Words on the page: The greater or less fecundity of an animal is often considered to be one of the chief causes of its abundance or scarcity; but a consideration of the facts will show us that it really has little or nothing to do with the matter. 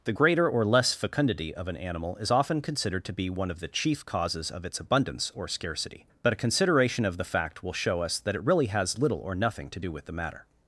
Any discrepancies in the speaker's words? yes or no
yes